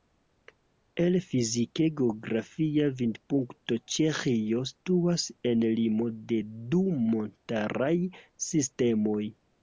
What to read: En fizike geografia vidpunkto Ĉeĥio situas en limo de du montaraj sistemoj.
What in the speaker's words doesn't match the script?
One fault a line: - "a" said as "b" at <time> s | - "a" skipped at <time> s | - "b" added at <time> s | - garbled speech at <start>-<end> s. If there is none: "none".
- "En" said as "El" at 1.0 s